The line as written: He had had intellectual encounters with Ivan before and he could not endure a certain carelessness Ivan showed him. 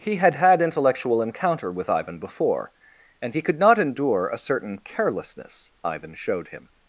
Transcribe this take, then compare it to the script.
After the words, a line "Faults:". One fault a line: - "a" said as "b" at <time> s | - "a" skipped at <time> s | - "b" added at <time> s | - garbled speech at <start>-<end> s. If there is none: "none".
He had had intellectual encounter with Ivan before and he could not endure a certain carelessness Ivan showed him.
Faults:
- "encounters" said as "encounter" at 1.2 s